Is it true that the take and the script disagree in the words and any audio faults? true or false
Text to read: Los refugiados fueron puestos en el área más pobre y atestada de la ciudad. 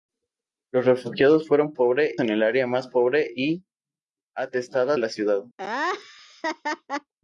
true